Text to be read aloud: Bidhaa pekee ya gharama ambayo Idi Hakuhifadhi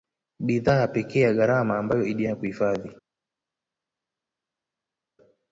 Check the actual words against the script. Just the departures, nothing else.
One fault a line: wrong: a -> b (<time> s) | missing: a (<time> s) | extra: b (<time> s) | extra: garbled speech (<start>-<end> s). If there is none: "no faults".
no faults